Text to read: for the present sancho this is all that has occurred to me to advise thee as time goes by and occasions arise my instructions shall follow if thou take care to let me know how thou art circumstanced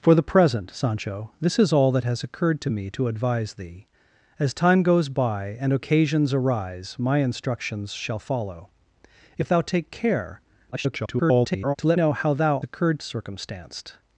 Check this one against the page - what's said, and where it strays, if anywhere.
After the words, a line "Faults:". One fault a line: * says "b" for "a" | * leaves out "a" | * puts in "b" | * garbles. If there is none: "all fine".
for the present sancho this is all that has occurred to me to advise thee as time goes by and occasions arise my instructions shall follow if thou take care [garbled] to let know how thou occurred circumstanced
Faults:
* garbles
* leaves out "me"
* says "occurred" for "art"